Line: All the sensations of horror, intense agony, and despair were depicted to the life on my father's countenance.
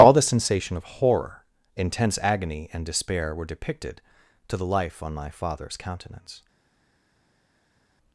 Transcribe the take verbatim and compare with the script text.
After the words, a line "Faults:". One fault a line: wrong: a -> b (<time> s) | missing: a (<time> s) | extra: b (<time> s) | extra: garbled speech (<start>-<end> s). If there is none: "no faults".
All the sensation of horror, intense agony, and despair were depicted to the life on my father's countenance.
Faults:
wrong: sensations -> sensation (0.2 s)